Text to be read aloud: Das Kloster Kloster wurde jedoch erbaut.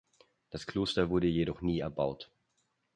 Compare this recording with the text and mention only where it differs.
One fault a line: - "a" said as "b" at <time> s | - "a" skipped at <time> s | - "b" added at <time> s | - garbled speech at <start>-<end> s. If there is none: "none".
- "Kloster" skipped at 1.1 s
- "nie" added at 1.6 s